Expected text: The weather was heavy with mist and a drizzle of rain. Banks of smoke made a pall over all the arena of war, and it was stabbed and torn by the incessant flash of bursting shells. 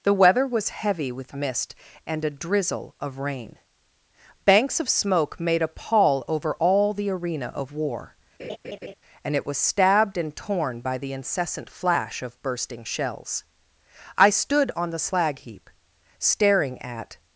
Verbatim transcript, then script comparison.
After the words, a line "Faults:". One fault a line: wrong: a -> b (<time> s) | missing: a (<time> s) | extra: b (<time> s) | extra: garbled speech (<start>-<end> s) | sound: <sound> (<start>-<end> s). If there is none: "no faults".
The weather was heavy with mist and a drizzle of rain. Banks of smoke made a pall over all the arena of war, and it was stabbed and torn by the incessant flash of bursting shells. I stood on the slag heap, staring at
Faults:
sound: laugh (8.4-8.9 s)
extra: I stood on the slag heap staring at (14.2 s)